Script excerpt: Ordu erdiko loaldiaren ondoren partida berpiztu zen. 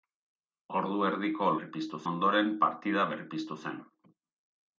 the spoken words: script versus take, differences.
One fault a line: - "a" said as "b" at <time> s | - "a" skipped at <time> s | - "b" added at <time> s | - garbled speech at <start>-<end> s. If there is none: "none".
- "loaldiaren" said as "berpiztu" at 1.6 s